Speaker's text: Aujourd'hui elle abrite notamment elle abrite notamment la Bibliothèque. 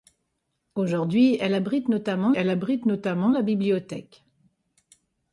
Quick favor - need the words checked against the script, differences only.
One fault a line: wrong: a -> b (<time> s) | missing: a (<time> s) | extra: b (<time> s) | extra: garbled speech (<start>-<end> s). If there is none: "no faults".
no faults